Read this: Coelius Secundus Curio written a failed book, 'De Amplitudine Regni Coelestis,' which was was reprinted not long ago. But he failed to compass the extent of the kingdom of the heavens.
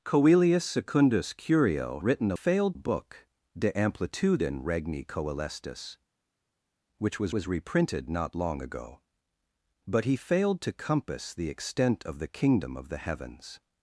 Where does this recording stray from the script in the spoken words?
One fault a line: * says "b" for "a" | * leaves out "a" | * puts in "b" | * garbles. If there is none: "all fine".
all fine